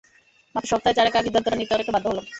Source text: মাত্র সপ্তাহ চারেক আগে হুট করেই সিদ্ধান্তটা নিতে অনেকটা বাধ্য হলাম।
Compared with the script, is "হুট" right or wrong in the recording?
wrong